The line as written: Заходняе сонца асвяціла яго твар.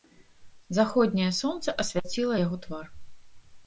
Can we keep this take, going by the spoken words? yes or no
yes